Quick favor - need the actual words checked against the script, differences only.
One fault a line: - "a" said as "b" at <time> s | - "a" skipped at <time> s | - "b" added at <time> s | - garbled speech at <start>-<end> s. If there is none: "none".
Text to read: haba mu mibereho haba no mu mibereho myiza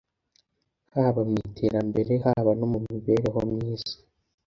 - "mibereho" said as "iterambere" at 1.5 s